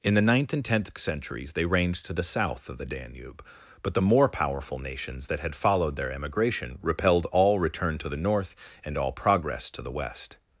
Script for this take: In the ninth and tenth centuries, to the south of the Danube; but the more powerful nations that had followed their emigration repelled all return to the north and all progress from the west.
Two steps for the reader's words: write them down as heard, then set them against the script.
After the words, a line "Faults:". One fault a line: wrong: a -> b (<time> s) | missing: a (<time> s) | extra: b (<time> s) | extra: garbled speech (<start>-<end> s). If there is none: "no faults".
In the ninth and tenth centuries, they reigned to the south of the Danube; but the more powerful nations that had followed their emigration repelled all return to the north and all progress to the west.
Faults:
extra: they reigned (1.5 s)
wrong: from -> to (9.7 s)